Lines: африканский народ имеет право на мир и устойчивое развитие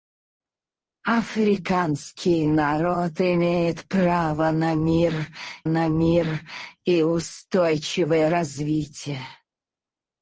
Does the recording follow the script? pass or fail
fail